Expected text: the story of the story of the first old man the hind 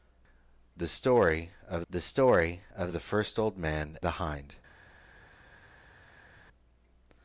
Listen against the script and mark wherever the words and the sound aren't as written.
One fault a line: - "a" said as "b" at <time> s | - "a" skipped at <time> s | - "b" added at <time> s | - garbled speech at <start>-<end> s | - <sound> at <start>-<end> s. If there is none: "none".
none